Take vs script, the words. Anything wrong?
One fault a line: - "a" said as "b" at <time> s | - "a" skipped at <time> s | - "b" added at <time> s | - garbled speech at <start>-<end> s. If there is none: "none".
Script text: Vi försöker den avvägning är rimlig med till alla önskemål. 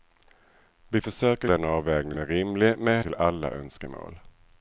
none